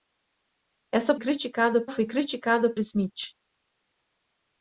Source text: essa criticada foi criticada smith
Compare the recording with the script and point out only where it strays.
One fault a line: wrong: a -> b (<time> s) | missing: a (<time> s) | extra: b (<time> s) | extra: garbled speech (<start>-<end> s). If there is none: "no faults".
no faults